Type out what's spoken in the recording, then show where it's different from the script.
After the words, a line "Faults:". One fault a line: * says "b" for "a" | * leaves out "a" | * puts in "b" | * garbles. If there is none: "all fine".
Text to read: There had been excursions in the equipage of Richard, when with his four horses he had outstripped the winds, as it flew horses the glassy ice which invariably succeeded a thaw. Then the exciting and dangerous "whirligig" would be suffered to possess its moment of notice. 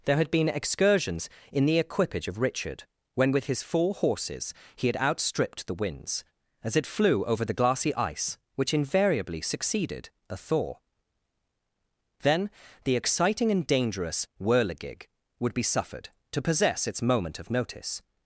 There had been excursions in the equipage of Richard, when with his four horses he had outstripped the winds, as it flew over the glassy ice which invariably succeeded a thaw. Then the exciting and dangerous "whirligig" would be suffered to possess its moment of notice.
Faults:
* says "over" for "horses"